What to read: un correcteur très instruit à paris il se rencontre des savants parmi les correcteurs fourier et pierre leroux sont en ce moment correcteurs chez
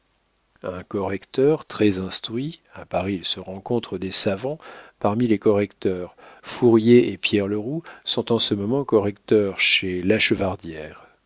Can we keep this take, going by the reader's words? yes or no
yes